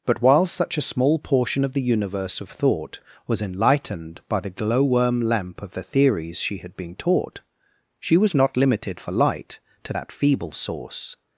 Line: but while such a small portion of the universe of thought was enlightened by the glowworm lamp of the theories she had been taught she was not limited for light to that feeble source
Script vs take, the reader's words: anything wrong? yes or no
no